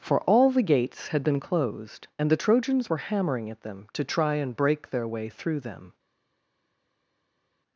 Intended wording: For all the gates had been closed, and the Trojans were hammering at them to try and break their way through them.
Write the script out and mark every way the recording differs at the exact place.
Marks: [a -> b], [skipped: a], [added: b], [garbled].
For all the gates had been closed, and the Trojans were hammering at them to try and break their way through them.